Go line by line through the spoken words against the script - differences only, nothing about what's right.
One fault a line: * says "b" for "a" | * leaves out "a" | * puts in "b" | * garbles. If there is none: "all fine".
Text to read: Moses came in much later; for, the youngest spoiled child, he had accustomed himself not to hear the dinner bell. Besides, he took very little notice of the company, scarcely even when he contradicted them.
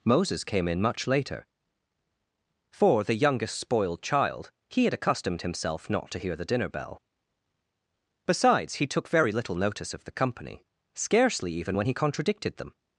all fine